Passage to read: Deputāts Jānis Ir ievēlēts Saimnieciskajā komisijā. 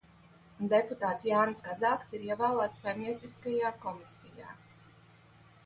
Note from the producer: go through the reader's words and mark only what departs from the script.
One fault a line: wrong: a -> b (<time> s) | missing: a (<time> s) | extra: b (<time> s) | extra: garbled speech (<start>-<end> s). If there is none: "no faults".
extra: Kazāks (1.6 s)